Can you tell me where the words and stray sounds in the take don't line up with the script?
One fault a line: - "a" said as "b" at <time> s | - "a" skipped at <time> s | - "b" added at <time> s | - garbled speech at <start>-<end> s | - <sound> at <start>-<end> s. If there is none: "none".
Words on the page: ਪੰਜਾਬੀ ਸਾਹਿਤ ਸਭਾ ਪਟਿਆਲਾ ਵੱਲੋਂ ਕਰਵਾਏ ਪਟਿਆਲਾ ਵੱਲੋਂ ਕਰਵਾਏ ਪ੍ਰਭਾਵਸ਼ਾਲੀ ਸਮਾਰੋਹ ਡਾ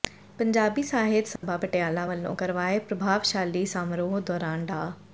- dropout at 1.4-1.4 s
- "ਪਟਿਆਲਾ ਵੱਲੋਂ ਕਰਵਾਏ" skipped at 2.8 s
- "ਦੌਰਾਨ" added at 4.2 s